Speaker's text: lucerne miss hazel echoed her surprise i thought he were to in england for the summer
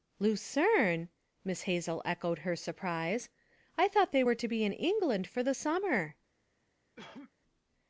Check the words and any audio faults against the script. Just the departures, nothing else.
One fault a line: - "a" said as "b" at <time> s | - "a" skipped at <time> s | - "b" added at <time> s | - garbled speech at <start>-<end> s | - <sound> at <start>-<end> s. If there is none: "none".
- "he" said as "they" at 4.1 s
- "be" added at 4.5 s
- cough at 7.0-7.3 s